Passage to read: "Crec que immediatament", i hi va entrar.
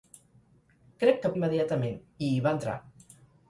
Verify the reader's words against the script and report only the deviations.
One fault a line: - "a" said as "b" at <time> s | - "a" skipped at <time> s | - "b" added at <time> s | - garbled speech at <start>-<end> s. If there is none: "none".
none